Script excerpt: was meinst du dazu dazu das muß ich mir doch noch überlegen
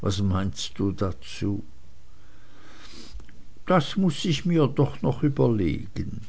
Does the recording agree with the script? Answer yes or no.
no